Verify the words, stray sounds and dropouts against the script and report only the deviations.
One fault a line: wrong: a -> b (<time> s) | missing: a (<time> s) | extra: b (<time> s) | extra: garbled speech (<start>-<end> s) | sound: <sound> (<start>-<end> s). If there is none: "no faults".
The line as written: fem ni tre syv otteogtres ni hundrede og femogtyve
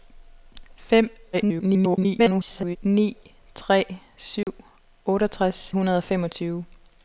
extra: garbled speech (1.3-2.8 s)
sound: dropout (4.4-4.5 s)
missing: ni (5.7 s)